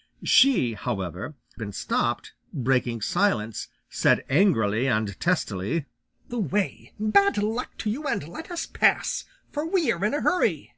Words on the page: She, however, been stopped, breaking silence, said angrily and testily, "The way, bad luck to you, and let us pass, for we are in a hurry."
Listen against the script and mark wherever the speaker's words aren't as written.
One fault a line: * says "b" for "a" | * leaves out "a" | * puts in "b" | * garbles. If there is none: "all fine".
all fine